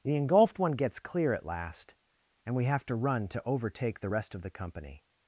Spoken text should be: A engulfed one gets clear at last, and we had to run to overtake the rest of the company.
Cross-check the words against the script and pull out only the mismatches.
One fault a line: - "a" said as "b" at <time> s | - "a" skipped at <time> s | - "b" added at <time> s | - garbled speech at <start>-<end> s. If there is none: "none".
- "A" said as "The" at 0.0 s
- "had" said as "have" at 2.6 s